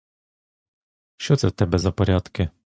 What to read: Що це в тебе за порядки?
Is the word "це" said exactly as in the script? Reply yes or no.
yes